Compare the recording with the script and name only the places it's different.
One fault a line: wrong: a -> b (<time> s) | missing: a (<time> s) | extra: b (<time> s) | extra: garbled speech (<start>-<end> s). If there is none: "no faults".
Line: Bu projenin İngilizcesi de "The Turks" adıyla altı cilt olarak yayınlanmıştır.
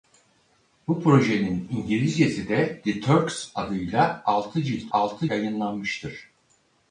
wrong: olarak -> altı (4.9 s)